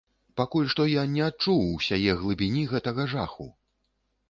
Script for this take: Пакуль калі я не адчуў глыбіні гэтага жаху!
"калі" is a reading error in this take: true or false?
true